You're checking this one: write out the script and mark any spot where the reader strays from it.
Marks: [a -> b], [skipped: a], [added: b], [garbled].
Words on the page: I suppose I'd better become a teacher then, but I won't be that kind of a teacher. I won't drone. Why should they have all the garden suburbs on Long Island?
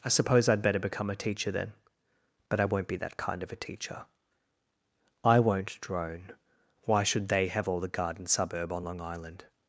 I suppose I'd better become a teacher then, but I won't be that kind of a teacher. I won't drone. Why should they have all the garden [suburbs -> suburb] on Long Island?